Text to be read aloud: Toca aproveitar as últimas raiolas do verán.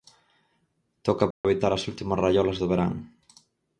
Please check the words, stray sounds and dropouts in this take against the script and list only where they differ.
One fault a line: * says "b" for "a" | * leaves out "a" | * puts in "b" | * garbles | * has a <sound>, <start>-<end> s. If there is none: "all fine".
* has a dropout, 1.3-1.4 s